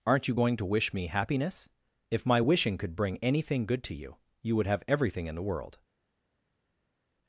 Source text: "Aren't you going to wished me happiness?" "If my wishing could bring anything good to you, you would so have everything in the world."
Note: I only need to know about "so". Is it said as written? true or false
false